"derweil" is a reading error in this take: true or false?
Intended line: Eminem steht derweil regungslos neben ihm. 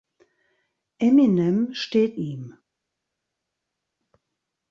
true